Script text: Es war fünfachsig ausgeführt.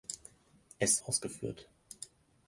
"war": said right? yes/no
no